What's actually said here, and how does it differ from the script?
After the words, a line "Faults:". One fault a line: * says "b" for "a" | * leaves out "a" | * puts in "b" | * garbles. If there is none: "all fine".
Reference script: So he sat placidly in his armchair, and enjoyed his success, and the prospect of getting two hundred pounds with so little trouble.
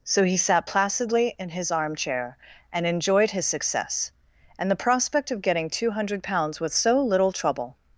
So he sat placidly in his armchair, and enjoyed his success, and the prospect of getting two hundred pounds with so little trouble.
Faults:
all fine